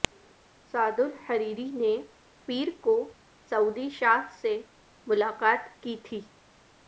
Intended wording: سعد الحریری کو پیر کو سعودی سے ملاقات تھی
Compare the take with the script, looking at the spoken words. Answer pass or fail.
fail